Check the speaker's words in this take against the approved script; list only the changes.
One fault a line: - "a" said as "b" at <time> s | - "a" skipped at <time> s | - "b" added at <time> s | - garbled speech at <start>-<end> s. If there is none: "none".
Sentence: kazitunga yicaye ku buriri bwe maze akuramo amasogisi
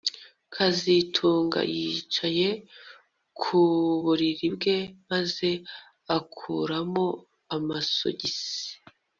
none